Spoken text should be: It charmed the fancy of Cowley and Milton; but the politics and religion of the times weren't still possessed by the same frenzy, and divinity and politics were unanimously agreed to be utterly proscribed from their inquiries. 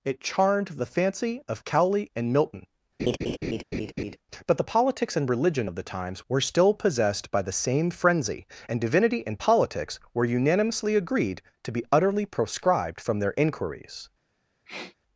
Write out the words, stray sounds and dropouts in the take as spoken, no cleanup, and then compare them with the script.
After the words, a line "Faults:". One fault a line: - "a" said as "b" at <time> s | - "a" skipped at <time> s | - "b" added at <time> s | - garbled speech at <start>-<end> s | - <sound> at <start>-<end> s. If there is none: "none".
It charmed the fancy of Cowley and Milton; but the politics and religion of the times were still possessed by the same frenzy, and divinity and politics were unanimously agreed to be utterly proscribed from their inquiries.
Faults:
- laugh at 3.0-4.2 s
- "weren't" said as "were" at 6.3 s
- sniff at 14.7-15.0 s